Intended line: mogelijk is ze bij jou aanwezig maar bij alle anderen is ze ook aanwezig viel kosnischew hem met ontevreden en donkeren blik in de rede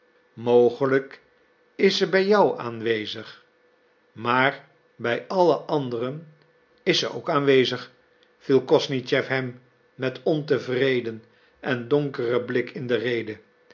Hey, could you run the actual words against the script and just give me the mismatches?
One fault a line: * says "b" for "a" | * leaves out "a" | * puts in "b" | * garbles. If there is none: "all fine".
all fine